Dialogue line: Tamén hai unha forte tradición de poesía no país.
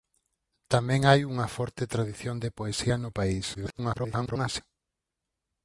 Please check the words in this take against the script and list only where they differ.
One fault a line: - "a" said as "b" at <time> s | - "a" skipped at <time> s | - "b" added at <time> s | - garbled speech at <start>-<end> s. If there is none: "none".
- garbled speech at 3.5-4.6 s